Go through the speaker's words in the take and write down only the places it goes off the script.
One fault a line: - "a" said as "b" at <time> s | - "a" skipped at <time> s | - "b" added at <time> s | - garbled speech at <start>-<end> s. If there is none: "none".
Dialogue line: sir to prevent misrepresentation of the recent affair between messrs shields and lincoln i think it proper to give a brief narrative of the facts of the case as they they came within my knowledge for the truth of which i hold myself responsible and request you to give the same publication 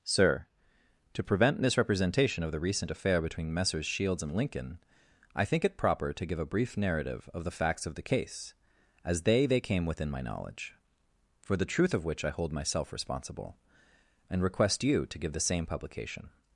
none